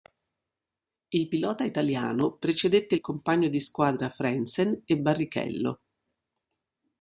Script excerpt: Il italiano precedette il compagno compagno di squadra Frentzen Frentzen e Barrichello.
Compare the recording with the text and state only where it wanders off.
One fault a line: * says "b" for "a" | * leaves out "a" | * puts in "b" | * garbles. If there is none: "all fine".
* puts in "pilota"
* leaves out "compagno"
* leaves out "Frentzen"